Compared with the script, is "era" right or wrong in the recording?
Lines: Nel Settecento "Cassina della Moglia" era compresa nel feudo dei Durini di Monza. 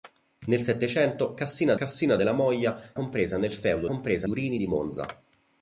wrong